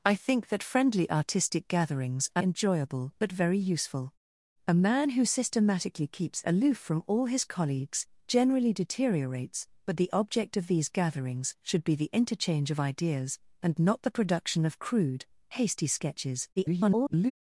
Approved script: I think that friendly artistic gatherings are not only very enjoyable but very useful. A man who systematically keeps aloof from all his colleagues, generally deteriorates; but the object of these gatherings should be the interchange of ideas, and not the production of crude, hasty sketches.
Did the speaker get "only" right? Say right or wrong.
wrong